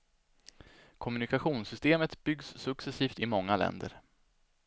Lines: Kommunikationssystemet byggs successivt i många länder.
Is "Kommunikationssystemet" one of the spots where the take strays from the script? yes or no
no